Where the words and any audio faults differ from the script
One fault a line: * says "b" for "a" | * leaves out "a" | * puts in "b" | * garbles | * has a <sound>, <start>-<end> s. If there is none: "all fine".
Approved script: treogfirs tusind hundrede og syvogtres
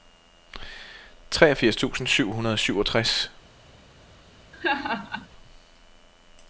* puts in "syv"
* has a laugh, 4.5-5.3 s